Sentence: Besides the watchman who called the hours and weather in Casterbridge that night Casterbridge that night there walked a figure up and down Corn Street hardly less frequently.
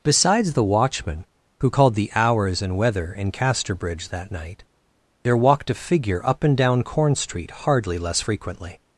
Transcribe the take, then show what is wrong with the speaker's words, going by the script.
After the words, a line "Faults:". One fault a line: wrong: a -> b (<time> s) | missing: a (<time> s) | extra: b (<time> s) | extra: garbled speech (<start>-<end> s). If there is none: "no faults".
Besides the watchman who called the hours and weather in Casterbridge that night there walked a figure up and down Corn Street hardly less frequently.
Faults:
missing: Casterbridge that night (4.6 s)